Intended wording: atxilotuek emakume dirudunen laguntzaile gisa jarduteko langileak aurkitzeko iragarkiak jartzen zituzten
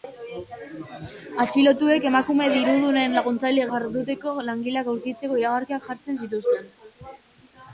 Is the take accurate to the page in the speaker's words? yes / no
no